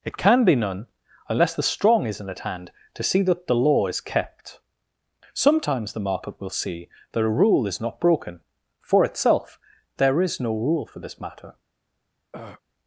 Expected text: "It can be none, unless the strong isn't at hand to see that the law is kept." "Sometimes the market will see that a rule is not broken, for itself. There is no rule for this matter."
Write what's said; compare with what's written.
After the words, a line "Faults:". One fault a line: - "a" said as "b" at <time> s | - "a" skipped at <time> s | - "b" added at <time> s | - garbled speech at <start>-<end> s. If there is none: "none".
"It can be none, unless the strong isn't at hand to see that the law is kept." "Sometimes the market will see that a rule is not broken, for itself. There is no rule for this matter."
Faults:
none